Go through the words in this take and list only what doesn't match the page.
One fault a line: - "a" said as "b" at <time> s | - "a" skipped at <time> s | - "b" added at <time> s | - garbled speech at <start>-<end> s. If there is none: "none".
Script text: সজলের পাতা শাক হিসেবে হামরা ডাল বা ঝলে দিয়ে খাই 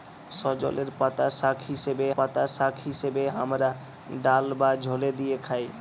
- "পাতা শাক হিসেবে" added at 2.2 s